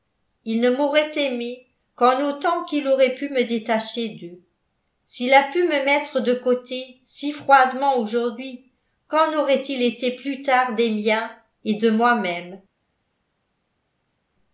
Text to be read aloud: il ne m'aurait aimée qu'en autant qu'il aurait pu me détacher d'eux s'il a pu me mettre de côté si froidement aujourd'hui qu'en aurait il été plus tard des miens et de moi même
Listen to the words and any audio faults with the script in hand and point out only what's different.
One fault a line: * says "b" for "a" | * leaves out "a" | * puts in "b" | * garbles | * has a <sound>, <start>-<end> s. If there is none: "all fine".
all fine